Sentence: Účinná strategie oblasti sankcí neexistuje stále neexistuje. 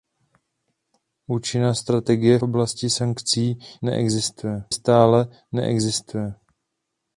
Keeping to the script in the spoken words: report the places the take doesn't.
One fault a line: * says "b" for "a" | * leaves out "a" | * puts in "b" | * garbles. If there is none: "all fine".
all fine